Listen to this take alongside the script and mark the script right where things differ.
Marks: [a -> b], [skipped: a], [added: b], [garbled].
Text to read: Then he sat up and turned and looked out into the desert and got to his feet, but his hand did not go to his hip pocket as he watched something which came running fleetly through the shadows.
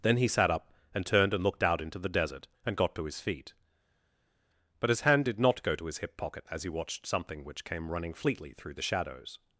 Then he sat up and turned and looked out into the desert and got to his feet, but his hand did not go to his hip pocket as he watched something which came running fleetly through the shadows.